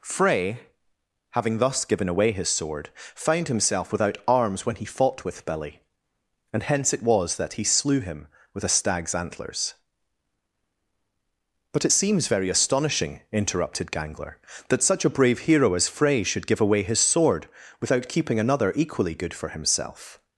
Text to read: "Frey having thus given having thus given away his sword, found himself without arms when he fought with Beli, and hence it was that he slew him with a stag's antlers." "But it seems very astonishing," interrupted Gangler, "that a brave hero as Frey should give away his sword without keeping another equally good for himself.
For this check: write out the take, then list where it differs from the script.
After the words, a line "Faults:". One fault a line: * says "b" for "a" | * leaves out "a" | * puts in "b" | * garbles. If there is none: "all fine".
"Frey having thus given away his sword, found himself without arms when he fought with Beli, and hence it was that he slew him with a stag's antlers." "But it seems very astonishing," interrupted Gangler, "that such a brave hero as Frey should give away his sword without keeping another equally good for himself.
Faults:
* leaves out "having thus given"
* puts in "such"